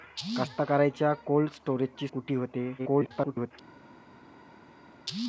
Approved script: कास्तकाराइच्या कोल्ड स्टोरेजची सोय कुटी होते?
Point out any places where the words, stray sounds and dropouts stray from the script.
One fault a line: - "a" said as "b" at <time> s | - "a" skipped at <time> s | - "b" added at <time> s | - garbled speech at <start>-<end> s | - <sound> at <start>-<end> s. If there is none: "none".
- "सोय" skipped at 2.1 s
- garbled speech at 2.8-3.5 s